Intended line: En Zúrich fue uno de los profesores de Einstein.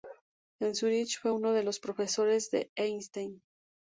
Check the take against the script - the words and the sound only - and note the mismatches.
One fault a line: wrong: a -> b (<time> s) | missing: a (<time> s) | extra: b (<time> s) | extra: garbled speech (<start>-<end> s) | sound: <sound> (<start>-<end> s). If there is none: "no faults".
no faults